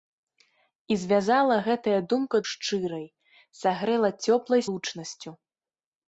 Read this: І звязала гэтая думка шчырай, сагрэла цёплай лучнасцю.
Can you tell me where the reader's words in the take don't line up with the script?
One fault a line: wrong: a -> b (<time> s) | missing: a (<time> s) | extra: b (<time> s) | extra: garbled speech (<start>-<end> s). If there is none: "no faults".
no faults